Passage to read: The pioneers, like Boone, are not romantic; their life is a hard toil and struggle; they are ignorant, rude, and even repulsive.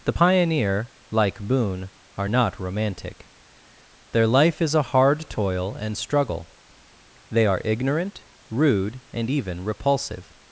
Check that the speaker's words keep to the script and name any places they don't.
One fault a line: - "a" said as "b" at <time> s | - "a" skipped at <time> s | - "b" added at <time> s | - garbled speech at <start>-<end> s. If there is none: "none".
- "pioneers" said as "pioneer" at 0.1 s